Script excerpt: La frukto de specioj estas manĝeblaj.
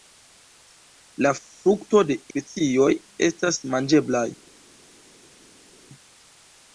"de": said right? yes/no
yes